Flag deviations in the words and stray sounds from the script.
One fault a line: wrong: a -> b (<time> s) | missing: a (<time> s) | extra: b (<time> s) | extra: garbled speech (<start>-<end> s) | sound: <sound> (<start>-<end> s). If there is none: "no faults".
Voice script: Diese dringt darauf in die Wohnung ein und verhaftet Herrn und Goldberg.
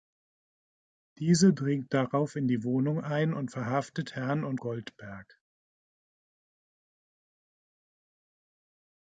no faults